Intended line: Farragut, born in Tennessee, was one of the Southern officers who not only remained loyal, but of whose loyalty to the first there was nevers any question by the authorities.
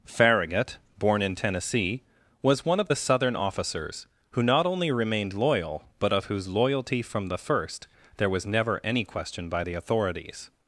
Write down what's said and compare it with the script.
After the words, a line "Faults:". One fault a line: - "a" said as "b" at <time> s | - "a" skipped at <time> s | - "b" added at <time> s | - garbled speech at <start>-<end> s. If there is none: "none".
Farragut, born in Tennessee, was one of the Southern officers who not only remained loyal, but of whose loyalty from the first there was never any question by the authorities.
Faults:
- "to" said as "from" at 7.0 s
- "nevers" said as "never" at 8.4 s